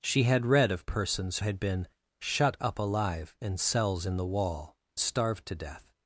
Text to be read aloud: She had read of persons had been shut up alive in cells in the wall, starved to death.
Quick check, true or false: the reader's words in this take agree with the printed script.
true